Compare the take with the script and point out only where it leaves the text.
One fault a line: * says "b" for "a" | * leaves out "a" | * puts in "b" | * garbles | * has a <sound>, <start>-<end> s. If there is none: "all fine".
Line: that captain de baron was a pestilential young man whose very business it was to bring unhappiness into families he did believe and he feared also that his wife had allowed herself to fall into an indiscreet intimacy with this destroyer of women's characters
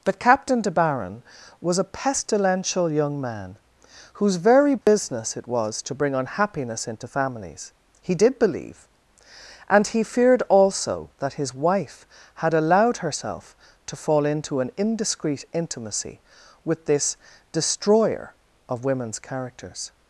* says "but" for "that"
* has a dropout, 4.8-4.9 s